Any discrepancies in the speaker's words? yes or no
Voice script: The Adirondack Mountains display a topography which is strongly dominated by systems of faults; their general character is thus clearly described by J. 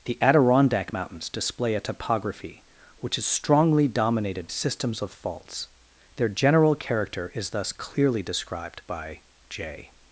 yes